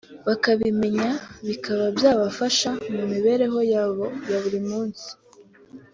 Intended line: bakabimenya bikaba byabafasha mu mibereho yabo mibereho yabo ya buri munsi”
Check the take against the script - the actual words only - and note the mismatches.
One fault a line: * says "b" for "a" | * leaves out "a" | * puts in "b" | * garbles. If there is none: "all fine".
* leaves out "mibereho yabo"